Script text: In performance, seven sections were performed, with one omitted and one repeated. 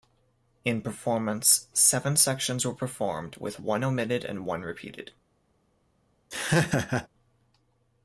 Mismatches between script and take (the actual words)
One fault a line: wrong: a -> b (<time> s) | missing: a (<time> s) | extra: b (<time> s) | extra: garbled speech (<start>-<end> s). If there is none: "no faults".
no faults